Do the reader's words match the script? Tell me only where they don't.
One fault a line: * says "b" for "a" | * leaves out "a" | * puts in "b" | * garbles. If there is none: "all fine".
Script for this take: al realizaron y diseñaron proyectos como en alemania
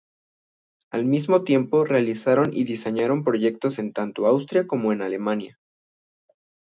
* puts in "mismo tiempo"
* puts in "en tanto austria"